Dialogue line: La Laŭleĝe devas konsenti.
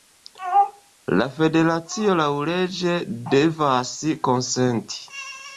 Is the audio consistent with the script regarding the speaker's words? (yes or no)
no